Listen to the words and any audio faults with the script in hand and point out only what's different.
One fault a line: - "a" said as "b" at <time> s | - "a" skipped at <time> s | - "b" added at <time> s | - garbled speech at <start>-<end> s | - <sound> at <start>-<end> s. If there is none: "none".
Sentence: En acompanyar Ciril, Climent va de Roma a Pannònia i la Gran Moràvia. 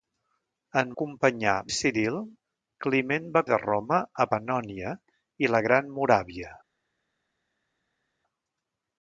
none